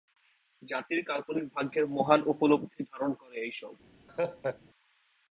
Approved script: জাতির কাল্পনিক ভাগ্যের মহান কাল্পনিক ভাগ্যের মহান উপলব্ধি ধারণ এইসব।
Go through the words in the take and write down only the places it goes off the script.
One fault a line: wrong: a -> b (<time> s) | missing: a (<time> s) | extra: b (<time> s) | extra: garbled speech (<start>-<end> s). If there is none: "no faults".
missing: কাল্পনিক ভাগ্যের মহান (2.2 s)
extra: করে (3.1 s)